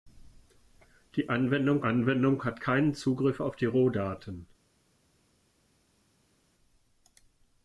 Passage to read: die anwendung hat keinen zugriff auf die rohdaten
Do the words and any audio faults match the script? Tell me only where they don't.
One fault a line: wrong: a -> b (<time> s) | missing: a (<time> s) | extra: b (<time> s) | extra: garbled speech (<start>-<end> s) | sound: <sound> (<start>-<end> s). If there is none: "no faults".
extra: anwendung (1.8 s)